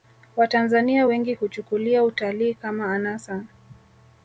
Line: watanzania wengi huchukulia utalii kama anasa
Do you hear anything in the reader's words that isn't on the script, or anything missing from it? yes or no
no